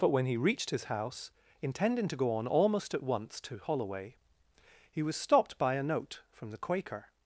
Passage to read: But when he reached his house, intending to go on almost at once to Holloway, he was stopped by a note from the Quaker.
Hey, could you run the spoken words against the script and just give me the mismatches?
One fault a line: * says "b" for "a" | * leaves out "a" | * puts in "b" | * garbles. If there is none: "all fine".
all fine